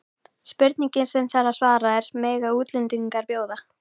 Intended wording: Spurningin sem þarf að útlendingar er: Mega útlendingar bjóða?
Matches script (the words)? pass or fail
fail